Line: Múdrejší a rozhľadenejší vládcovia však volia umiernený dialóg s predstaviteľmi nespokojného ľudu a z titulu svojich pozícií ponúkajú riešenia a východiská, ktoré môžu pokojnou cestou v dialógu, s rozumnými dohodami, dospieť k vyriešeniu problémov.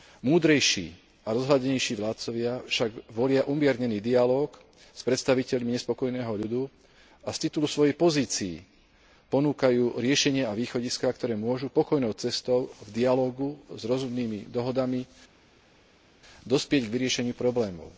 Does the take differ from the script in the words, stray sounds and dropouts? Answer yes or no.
no